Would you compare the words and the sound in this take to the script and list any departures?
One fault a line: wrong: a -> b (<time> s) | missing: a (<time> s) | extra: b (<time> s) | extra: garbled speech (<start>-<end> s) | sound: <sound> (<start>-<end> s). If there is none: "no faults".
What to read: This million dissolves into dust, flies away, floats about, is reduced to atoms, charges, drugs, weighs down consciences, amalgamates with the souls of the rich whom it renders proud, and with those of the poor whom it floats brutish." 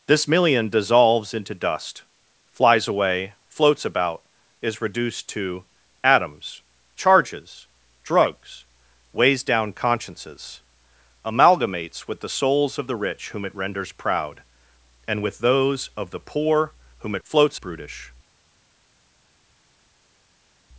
no faults